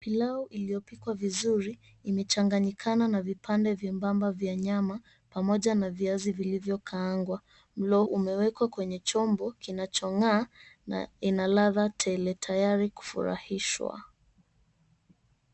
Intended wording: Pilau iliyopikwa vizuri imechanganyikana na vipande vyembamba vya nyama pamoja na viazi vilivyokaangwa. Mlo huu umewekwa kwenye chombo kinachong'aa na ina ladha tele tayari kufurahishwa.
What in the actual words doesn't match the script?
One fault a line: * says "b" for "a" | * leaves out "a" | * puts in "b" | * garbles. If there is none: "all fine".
* leaves out "huu"